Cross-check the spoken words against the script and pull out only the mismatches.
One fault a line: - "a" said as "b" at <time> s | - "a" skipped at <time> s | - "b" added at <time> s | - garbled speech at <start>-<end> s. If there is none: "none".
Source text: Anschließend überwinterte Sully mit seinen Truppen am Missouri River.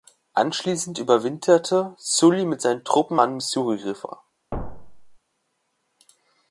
none